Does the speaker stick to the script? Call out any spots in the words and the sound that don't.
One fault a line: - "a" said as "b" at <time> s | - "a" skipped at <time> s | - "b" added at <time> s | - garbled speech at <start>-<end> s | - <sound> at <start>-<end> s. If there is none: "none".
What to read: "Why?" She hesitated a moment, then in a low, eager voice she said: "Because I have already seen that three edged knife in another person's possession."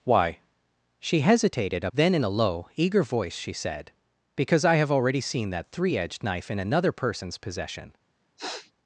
- "moment" skipped at 1.9 s
- sniff at 8.4-8.7 s